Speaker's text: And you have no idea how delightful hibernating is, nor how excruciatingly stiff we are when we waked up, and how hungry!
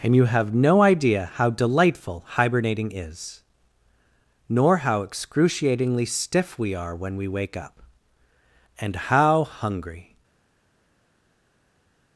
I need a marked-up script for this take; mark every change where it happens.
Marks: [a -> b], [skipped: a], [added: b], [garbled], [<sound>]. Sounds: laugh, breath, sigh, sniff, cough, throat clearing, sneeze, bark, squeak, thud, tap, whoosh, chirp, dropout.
And you have no idea how delightful hibernating is, nor how excruciatingly stiff we are when we [waked -> wake] up, and how hungry!